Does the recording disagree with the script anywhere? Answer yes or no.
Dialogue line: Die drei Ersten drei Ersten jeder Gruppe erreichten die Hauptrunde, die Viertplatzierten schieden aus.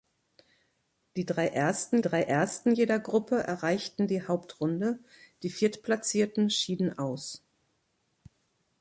no